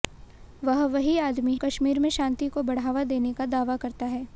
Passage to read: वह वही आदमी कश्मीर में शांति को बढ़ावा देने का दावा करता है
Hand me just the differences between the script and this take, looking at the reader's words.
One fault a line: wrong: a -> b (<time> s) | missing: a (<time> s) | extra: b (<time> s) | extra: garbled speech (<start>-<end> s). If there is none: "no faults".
no faults